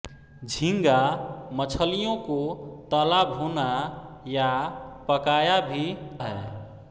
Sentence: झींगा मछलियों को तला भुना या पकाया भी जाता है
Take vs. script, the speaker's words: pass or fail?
fail